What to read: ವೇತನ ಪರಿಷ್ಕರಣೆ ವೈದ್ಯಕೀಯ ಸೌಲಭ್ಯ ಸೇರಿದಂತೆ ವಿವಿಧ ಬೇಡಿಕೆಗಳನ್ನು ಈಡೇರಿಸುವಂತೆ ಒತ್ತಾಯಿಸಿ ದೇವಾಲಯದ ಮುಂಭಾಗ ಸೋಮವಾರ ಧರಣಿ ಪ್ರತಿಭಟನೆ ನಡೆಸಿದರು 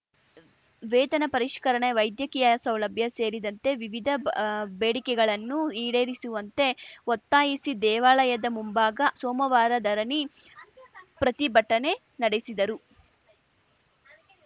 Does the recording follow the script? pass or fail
pass